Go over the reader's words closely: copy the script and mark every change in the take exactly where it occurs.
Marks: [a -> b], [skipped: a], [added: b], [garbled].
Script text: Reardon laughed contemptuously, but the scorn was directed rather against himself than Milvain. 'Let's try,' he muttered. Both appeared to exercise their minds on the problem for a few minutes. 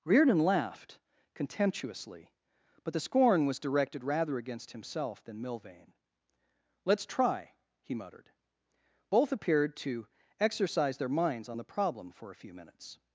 Reardon laughed contemptuously, but the scorn was directed rather against himself than Milvain. 'Let's try,' he muttered. Both appeared to exercise their minds on the problem for a few minutes.